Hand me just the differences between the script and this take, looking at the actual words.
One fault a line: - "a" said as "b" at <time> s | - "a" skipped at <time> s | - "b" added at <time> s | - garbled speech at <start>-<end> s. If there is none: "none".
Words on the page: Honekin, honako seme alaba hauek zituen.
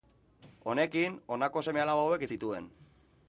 none